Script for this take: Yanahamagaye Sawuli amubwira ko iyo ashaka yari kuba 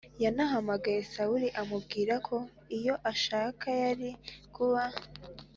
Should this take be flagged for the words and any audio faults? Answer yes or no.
no